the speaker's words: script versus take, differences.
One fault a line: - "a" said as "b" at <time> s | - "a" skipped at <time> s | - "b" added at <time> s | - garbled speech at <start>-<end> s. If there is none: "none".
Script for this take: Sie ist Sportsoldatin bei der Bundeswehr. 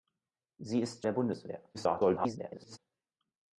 - "Sportsoldatin bei" skipped at 1.1 s
- garbled speech at 1.7-2.8 s